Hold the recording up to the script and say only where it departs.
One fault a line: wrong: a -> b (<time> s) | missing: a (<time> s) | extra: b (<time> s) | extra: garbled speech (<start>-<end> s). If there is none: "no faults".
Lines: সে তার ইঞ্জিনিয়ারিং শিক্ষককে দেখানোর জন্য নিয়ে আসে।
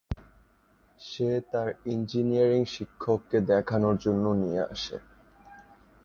no faults